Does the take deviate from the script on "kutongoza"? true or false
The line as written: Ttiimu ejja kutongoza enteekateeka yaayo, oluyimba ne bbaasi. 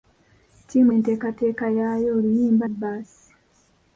true